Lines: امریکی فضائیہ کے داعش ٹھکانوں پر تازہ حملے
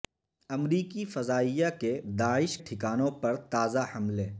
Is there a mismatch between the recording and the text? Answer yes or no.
no